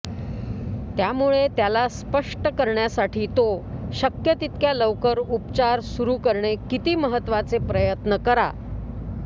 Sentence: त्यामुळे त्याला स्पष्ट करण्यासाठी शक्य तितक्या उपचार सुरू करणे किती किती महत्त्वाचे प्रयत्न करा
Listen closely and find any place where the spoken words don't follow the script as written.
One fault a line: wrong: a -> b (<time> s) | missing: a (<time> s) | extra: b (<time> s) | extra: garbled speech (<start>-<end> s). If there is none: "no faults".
extra: तो (3.4 s)
extra: लवकर (4.7 s)
missing: किती (6.9 s)